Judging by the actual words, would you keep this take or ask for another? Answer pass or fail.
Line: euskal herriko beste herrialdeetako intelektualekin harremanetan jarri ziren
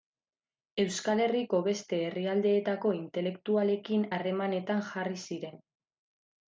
pass